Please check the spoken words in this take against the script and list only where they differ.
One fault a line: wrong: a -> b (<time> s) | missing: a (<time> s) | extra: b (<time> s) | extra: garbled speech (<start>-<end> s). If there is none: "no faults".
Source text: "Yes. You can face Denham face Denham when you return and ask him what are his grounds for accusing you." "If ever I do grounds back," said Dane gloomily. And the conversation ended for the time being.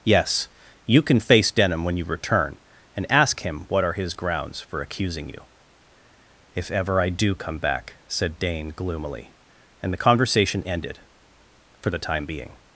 missing: face Denham (1.8 s)
wrong: grounds -> come (7.3 s)